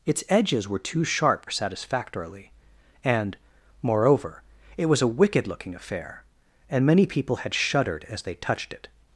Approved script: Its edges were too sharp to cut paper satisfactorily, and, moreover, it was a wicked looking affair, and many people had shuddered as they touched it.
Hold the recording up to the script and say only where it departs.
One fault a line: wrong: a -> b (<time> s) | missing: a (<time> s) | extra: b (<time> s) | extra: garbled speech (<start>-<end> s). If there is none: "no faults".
missing: to cut paper (1.4 s)